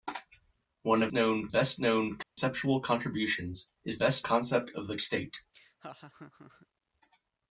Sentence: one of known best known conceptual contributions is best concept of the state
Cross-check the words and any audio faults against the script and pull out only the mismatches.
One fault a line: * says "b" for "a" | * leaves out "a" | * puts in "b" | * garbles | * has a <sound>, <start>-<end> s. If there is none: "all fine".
* has a dropout, 2.2-2.4 s
* has a laugh, 5.5-6.7 s